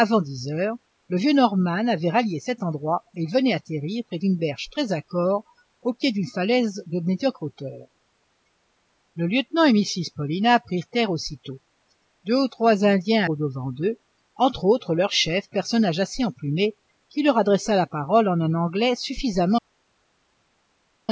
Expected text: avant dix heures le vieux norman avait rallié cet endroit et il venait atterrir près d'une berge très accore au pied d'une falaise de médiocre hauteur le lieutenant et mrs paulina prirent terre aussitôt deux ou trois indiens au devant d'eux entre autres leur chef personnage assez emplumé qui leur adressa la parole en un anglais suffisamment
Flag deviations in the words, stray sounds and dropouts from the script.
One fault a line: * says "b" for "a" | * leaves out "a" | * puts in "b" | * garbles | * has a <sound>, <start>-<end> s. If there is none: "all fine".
all fine